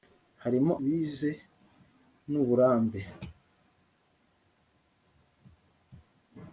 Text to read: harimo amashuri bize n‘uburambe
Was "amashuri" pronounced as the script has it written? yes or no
no